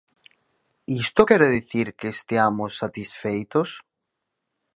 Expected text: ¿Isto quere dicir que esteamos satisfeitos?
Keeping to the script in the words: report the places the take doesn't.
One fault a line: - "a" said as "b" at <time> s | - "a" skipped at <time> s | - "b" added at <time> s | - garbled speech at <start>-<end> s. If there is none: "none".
none